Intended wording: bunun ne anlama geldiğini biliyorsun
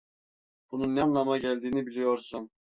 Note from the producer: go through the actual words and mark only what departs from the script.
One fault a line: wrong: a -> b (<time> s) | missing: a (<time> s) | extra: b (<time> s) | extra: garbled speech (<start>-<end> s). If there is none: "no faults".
no faults